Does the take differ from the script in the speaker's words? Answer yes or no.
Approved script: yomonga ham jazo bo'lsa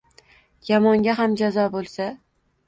no